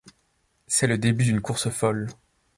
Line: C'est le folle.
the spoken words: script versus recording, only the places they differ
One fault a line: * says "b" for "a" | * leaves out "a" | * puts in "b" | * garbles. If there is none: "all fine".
* puts in "début d'une course"